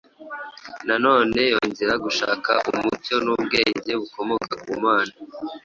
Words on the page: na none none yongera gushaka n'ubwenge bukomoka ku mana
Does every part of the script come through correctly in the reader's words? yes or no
no